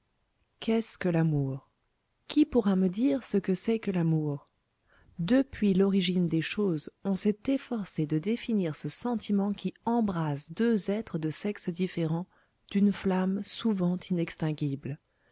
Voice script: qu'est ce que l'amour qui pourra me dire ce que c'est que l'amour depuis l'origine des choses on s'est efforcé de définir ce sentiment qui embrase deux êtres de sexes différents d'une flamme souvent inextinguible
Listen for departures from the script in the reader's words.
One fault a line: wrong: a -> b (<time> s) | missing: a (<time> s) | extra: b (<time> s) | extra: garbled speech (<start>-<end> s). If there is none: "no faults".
no faults